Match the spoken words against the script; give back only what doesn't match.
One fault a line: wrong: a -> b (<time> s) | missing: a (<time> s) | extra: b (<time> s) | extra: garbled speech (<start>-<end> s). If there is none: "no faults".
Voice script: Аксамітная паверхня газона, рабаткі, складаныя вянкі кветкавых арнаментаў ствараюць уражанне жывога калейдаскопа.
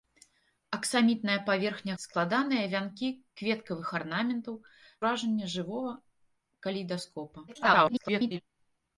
missing: газона рабаткі (2.0 s)
missing: ствараюць (4.6 s)
extra: garbled speech (7.5-8.4 s)